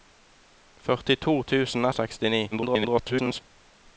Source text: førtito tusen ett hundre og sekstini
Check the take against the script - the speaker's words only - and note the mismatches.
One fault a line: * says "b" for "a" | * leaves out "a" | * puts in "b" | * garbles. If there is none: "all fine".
* leaves out "ett hundre"
* garbles